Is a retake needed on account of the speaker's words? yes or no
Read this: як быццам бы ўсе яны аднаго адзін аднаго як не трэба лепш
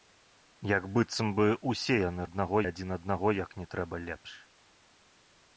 no